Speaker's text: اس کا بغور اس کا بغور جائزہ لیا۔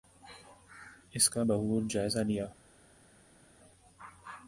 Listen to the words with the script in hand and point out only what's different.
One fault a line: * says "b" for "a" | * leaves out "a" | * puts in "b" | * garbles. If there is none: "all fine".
* leaves out "اس کا بغور"